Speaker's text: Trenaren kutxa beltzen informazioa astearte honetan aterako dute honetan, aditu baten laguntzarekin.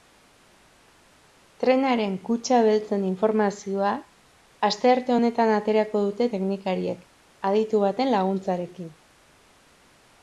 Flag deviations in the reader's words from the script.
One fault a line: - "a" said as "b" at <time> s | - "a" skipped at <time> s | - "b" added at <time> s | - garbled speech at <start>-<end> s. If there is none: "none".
- "honetan" said as "teknikariek" at 6.3 s